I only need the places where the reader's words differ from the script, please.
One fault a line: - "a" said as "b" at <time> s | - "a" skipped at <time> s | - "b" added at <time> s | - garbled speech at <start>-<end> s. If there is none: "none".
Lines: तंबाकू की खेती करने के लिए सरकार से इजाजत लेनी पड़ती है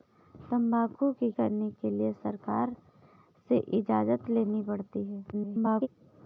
- "खेती" skipped at 1.3 s
- garbled speech at 5.3-5.9 s